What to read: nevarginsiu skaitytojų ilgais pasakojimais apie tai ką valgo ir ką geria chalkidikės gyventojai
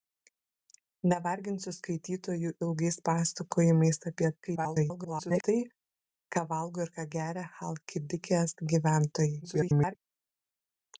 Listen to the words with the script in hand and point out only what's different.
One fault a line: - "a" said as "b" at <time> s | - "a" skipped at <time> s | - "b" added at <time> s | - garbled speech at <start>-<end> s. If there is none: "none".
- garbled speech at 4.4-5.4 s
- garbled speech at 9.4-10.0 s